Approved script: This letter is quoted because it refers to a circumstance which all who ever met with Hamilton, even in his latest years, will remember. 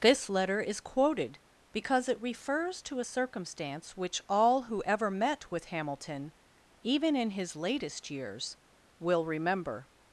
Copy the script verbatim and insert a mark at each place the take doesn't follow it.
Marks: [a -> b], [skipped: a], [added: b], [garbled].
This letter is quoted because it refers to a circumstance which all who ever met with Hamilton, even in his latest years, will remember.